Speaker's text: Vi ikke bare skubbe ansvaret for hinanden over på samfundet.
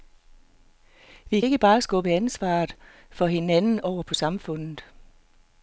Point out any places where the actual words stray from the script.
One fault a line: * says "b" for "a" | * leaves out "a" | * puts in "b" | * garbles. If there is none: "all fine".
all fine